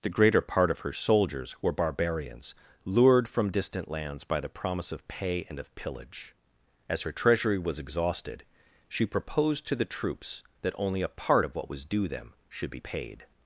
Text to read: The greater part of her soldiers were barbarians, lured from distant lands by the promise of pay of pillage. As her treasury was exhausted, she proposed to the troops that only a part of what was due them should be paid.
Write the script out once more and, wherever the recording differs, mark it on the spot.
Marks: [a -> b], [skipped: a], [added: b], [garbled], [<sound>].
The greater part of her soldiers were barbarians, lured from distant lands by the promise of pay [added: and] of pillage. As her treasury was exhausted, she proposed to the troops that only a part of what was due them should be paid.